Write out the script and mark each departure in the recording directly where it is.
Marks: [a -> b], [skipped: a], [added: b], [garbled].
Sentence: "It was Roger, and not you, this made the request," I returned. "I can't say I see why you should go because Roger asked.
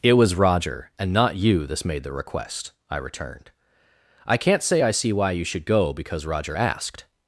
"It was Roger, and not you, this made the request," I returned. "I can't say I see why you should go because Roger asked.